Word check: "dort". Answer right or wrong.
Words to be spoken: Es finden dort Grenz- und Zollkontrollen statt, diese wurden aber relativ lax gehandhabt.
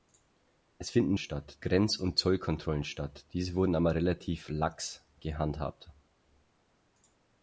wrong